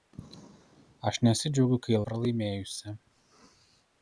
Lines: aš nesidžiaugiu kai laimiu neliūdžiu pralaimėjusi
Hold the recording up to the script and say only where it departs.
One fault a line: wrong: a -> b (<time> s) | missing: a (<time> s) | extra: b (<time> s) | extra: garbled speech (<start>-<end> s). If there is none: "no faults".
missing: laimiu neliūdžiu (2.0 s)